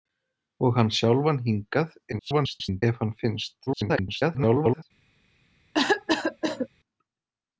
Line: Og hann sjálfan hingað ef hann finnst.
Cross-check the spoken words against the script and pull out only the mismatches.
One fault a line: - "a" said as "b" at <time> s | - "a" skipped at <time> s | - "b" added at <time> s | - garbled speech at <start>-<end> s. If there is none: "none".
- garbled speech at 2.1-2.8 s
- garbled speech at 3.7-4.8 s